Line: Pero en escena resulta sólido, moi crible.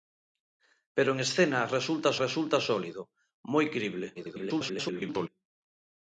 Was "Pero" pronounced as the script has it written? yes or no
yes